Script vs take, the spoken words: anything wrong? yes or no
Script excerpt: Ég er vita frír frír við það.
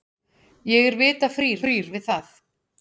no